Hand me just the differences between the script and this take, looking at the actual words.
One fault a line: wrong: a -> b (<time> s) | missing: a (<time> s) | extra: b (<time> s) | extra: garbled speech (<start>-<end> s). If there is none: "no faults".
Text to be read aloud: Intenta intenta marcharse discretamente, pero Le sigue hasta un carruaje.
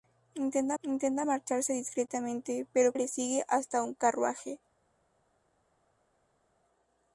no faults